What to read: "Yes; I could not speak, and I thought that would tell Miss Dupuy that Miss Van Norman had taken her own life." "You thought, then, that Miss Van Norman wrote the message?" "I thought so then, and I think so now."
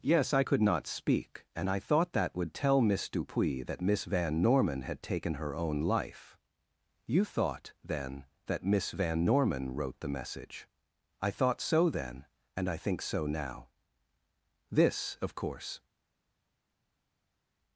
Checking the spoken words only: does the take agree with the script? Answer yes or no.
no